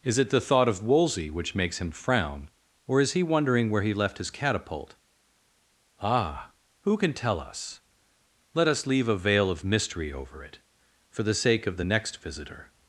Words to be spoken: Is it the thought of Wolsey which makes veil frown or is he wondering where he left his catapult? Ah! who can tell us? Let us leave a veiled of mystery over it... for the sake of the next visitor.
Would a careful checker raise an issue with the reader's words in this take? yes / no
yes